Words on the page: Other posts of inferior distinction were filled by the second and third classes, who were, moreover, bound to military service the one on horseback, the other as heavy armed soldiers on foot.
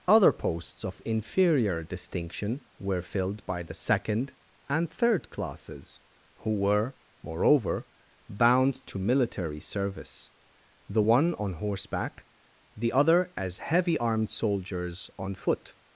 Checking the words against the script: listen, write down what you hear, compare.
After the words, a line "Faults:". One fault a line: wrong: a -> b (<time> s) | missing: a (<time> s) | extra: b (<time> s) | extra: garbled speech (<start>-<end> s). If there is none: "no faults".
Other posts of inferior distinction were filled by the second and third classes, who were, moreover, bound to military service the one on horseback, the other as heavy armed soldiers on foot.
Faults:
no faults